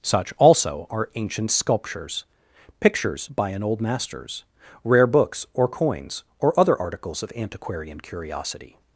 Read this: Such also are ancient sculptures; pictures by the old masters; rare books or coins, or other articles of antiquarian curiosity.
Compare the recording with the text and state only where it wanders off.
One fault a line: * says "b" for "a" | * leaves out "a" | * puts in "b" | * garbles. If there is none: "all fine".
* says "an" for "the"